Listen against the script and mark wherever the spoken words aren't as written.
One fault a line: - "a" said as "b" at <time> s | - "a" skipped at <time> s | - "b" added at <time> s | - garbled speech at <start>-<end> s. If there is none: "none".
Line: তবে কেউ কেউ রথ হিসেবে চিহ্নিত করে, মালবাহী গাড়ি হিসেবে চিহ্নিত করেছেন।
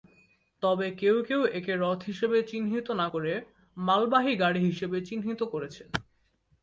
- "একে" added at 1.5 s
- "না" added at 2.9 s